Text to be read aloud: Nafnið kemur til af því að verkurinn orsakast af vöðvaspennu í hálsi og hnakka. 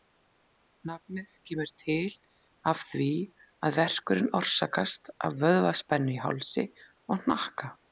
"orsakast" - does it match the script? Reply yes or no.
yes